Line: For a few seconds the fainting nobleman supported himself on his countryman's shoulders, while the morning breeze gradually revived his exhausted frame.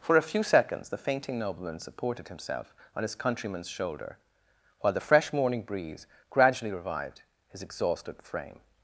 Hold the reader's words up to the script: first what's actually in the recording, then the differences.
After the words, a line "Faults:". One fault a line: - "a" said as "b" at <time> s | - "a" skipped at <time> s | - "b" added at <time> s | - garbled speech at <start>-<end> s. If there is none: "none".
For a few seconds the fainting nobleman supported himself on his countryman's shoulder, while the fresh morning breeze gradually revived his exhausted frame.
Faults:
- "shoulders" said as "shoulder" at 3.7 s
- "fresh" added at 5.0 s